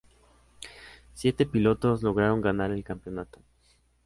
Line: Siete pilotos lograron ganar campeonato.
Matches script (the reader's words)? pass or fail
fail